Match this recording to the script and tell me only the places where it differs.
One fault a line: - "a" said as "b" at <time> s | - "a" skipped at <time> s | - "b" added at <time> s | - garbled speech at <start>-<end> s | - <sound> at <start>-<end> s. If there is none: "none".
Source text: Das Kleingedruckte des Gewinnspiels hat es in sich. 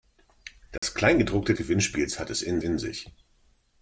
- dropout at 0.8-0.8 s
- "des" skipped at 1.5 s
- "in" added at 2.6 s